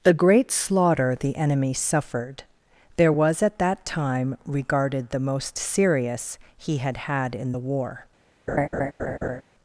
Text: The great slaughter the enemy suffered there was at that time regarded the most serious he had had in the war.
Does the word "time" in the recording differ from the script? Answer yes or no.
no